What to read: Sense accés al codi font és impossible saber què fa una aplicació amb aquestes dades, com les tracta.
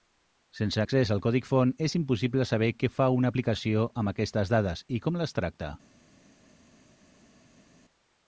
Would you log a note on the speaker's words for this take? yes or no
yes